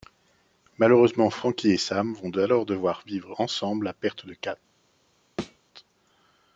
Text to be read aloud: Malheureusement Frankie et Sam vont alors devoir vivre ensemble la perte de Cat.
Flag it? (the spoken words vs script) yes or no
no